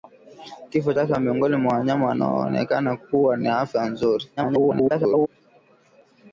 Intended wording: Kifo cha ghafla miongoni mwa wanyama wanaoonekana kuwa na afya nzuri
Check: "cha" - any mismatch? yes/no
yes